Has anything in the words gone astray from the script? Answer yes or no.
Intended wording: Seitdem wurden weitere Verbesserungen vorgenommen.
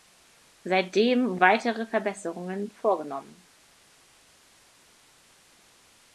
yes